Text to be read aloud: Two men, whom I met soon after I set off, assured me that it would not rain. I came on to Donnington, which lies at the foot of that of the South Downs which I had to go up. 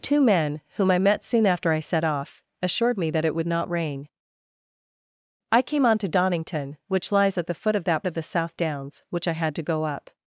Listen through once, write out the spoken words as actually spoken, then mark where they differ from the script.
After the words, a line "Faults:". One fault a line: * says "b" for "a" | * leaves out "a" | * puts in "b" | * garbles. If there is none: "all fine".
Two men, whom I met soon after I set off, assured me that it would not rain. I came on to Donnington, which lies at the foot of that of the South Downs which I had to go up.
Faults:
all fine